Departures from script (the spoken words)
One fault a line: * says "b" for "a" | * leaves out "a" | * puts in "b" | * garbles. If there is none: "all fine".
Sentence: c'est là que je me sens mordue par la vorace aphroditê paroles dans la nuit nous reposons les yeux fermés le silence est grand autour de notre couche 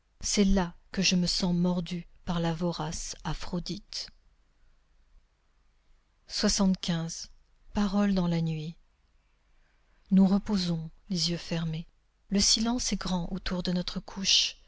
all fine